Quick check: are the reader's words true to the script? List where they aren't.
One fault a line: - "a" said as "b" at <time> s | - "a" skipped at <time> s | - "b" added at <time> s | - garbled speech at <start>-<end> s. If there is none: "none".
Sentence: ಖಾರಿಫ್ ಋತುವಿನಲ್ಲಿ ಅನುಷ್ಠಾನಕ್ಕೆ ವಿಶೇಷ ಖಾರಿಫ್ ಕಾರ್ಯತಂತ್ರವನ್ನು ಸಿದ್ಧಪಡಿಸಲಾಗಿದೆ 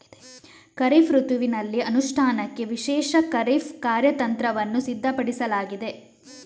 none